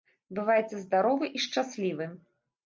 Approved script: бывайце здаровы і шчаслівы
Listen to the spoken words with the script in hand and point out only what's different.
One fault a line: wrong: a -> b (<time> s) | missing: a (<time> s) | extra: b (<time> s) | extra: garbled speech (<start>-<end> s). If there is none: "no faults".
no faults